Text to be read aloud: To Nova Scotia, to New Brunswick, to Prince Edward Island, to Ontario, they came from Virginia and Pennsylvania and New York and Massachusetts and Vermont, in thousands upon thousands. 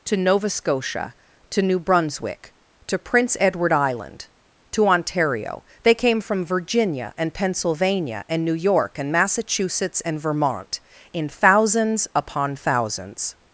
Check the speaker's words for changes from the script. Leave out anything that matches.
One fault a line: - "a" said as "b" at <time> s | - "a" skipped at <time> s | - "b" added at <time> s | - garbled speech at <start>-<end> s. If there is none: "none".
none